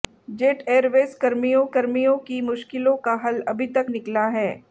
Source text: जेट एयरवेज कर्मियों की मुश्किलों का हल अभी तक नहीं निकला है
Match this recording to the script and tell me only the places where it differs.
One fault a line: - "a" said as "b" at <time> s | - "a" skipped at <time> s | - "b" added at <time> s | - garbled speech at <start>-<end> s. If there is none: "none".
- "कर्मियों" added at 1.7 s
- "नहीं" skipped at 3.9 s